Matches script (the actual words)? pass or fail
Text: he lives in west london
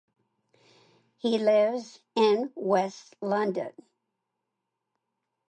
pass